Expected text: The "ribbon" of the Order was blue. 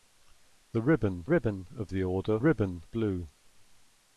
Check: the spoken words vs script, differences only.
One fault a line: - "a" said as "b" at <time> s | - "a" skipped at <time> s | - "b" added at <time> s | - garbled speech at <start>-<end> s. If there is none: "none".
- "ribbon" added at 1.2 s
- "was" said as "ribbon" at 2.4 s